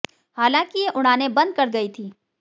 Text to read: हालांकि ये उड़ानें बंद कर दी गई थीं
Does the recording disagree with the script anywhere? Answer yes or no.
yes